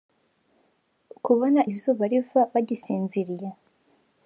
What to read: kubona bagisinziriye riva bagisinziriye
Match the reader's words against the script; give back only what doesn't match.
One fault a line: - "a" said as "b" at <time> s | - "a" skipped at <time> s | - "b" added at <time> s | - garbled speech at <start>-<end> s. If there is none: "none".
- "bagisinziriye" said as "izuba" at 1.7 s